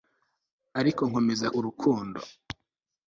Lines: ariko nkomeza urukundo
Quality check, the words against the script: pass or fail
pass